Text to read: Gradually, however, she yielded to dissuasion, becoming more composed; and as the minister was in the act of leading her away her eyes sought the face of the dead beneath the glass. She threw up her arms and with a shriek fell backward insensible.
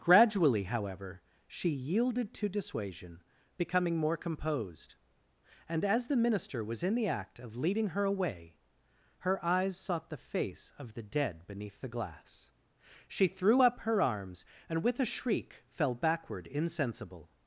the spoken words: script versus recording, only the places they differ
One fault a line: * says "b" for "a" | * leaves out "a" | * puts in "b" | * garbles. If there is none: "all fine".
all fine